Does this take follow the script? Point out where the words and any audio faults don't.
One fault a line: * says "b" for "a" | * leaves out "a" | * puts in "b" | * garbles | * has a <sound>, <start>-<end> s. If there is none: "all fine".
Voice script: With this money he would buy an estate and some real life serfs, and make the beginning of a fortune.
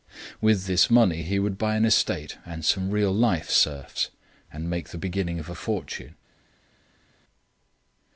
all fine